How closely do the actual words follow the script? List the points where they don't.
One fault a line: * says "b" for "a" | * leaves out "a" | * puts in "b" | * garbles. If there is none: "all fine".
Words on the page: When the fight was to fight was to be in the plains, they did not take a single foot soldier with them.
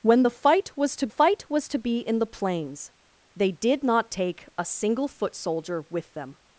all fine